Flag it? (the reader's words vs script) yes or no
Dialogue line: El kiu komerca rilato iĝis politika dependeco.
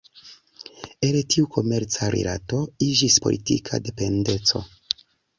yes